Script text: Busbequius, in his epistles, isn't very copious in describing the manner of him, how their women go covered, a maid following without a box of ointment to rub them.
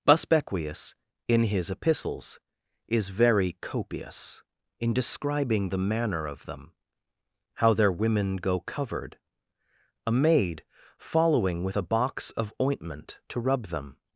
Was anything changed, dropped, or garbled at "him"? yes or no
yes